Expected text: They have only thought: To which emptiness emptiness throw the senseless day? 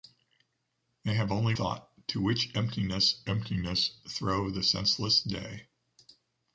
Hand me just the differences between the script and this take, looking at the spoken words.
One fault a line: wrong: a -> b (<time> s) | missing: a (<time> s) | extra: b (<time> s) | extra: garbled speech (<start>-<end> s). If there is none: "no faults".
no faults